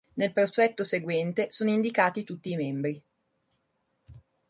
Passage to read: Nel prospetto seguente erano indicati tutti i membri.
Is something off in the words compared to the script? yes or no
yes